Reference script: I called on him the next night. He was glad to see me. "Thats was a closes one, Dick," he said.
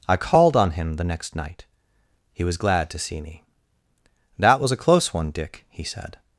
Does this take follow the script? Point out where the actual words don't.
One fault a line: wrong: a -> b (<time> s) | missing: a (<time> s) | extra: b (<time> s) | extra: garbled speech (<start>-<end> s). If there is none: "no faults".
wrong: Thats -> That (4.4 s)
wrong: closes -> close (4.8 s)